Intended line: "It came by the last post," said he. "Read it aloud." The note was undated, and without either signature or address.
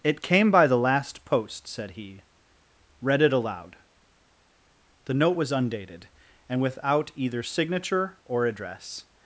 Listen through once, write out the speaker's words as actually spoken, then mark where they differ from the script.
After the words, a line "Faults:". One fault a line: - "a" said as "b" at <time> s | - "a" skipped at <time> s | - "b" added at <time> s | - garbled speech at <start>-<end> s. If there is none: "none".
"It came by the last post," said he. "Read it aloud." The note was undated, and without either signature or address.
Faults:
none